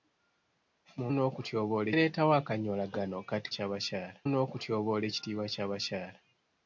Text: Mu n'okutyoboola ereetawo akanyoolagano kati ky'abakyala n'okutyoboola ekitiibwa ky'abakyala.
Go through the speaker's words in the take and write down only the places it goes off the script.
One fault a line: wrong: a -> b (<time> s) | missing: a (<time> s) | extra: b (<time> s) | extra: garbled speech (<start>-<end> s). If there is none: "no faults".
no faults